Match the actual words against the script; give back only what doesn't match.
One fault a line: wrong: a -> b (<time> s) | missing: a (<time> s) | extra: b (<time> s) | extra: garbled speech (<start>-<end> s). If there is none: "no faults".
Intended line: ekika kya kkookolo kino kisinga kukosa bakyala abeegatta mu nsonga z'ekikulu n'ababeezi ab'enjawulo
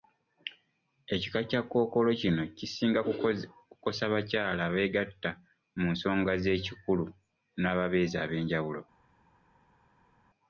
no faults